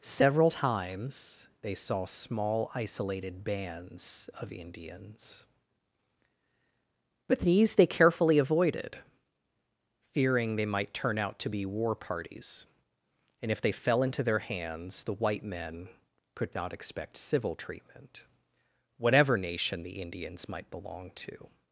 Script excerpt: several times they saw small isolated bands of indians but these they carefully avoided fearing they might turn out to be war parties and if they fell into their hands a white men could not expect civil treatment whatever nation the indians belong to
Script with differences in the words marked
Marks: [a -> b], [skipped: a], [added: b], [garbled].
several times they saw small isolated bands of indians but these they carefully avoided fearing they might turn out to be war parties and if they fell into their hands [a -> the] white men could not expect civil treatment whatever nation the indians [added: might] belong to